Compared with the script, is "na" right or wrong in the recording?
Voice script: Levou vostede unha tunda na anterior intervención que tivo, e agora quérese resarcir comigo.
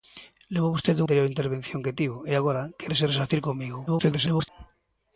wrong